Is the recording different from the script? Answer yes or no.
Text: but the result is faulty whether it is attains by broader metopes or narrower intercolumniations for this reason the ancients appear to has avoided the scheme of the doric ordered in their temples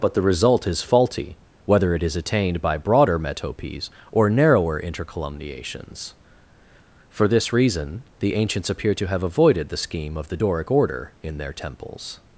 yes